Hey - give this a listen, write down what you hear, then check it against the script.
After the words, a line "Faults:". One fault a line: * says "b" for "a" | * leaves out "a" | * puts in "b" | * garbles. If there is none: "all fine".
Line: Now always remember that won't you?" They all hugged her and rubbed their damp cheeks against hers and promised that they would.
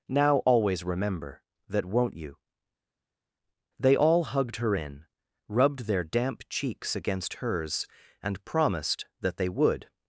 Now always remember that won't you?" They all hugged her in rubbed their damp cheeks against hers and promised that they would.
Faults:
* says "in" for "and"